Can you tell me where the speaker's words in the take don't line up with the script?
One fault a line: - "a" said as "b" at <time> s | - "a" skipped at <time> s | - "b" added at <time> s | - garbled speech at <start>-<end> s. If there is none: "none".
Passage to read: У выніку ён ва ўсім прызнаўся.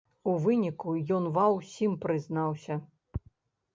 none